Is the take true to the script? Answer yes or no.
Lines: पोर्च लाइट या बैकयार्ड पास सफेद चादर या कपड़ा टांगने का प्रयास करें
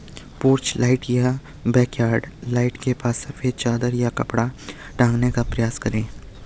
no